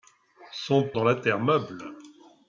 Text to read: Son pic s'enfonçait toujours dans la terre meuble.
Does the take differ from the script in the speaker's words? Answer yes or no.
yes